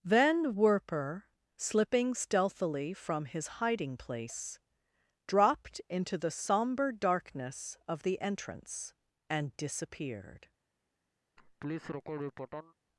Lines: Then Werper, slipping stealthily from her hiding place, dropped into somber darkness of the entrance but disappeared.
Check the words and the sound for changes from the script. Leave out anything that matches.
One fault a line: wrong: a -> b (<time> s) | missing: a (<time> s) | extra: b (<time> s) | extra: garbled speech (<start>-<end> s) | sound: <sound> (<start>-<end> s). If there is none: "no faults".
wrong: her -> his (3.2 s)
extra: the (6.2 s)
wrong: but -> and (9.3 s)
sound: laugh (11.4-12.7 s)